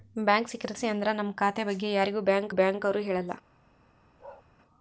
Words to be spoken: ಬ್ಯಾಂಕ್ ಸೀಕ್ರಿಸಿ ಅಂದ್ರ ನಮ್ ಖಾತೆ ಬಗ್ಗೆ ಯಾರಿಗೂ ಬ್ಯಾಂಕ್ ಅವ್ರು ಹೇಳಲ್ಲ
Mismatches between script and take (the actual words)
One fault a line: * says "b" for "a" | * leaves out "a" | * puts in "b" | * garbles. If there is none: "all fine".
* puts in "ಬ್ಯಾಂಕ್"